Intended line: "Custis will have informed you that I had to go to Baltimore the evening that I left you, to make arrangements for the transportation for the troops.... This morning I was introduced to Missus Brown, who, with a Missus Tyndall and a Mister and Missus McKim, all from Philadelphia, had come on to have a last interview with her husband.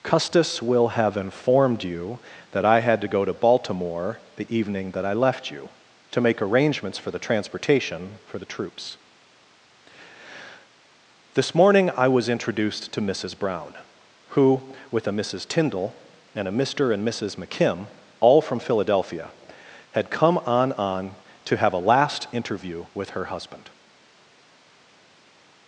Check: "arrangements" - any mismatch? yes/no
no